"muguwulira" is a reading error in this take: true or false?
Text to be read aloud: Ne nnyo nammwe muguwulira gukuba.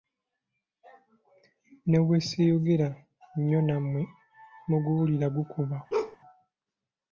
false